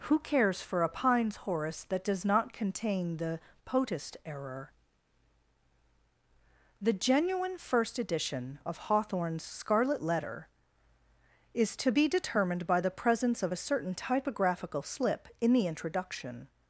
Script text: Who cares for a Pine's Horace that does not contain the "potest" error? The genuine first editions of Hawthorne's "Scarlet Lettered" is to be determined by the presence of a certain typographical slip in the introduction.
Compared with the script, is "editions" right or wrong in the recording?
wrong